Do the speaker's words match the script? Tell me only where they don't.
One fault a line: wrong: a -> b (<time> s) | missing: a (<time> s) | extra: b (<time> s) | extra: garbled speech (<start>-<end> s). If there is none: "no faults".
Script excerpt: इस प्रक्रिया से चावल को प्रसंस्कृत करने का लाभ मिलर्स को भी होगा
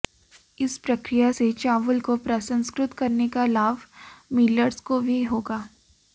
no faults